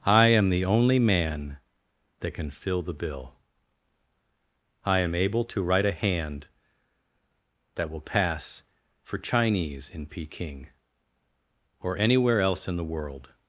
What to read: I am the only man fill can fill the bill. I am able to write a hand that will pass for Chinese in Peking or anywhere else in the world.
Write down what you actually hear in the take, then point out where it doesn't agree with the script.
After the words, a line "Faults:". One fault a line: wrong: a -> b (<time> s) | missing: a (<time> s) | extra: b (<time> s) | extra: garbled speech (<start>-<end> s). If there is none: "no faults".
I am the only man that can fill the bill. I am able to write a hand that will pass for Chinese in Peking or anywhere else in the world.
Faults:
wrong: fill -> that (2.2 s)